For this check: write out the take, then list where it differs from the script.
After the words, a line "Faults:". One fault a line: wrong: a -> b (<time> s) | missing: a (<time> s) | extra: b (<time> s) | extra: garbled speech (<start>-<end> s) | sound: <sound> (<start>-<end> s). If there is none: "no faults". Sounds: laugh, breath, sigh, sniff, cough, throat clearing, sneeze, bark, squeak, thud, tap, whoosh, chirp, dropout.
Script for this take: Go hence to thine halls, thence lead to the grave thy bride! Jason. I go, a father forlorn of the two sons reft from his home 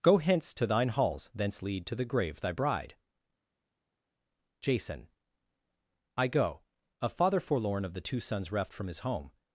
Go hence to thine halls, thence lead to the grave thy bride! Jason. I go, a father forlorn of the two sons reft from his home
Faults:
no faults